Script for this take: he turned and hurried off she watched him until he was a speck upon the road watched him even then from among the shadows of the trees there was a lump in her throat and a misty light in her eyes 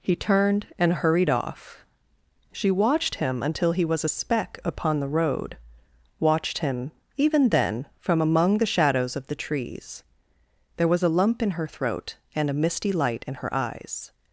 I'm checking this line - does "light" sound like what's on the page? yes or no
yes